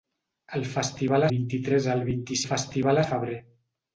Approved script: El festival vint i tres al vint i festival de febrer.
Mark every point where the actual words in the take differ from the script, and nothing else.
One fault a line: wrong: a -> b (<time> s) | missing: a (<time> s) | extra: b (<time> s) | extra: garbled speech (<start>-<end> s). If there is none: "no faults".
no faults